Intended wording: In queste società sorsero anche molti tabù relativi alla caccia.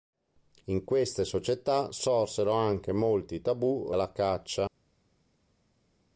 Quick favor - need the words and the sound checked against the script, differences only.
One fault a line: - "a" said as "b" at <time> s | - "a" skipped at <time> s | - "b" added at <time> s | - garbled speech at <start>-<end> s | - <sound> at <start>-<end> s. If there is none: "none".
- "relativi" skipped at 3.9 s